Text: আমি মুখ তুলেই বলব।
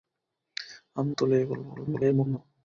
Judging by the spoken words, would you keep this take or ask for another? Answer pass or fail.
fail